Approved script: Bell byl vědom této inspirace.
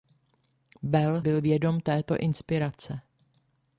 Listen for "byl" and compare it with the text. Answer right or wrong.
right